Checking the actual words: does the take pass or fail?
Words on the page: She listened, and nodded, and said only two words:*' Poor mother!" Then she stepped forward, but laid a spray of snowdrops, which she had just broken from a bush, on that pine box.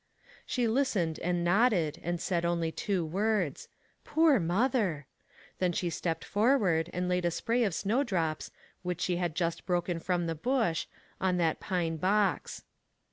fail